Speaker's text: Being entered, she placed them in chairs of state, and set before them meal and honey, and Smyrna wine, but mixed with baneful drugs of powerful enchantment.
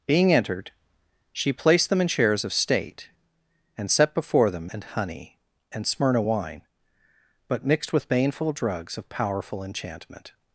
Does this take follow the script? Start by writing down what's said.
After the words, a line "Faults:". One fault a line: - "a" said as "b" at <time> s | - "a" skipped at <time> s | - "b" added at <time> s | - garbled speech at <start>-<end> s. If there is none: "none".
Being entered, she placed them in chairs of state, and set before them and honey, and Smyrna wine, but mixed with baneful drugs of powerful enchantment.
Faults:
- "meal" skipped at 4.7 s